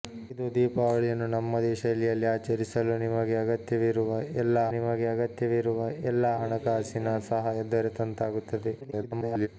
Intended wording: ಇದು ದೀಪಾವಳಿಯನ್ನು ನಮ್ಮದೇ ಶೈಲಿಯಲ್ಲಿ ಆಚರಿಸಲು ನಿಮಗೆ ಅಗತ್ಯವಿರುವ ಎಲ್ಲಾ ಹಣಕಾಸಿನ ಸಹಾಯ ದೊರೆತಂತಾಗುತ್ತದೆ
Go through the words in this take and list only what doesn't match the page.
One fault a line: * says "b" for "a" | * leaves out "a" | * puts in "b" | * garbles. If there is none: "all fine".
* puts in "ನಿಮಗೆ ಅಗತ್ಯವಿರುವ ಎಲ್ಲಾ"
* garbles